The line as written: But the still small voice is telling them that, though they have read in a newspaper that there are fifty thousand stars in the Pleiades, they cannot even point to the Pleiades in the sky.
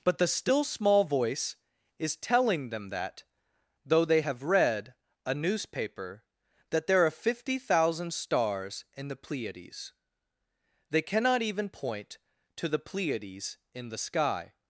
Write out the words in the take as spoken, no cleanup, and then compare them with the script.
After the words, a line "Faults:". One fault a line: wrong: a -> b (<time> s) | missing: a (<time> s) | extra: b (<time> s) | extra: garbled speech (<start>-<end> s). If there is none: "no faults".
But the still small voice is telling them that, though they have read a newspaper that there are fifty thousand stars in the Pleiades, they cannot even point to the Pleiades in the sky.
Faults:
missing: in (4.9 s)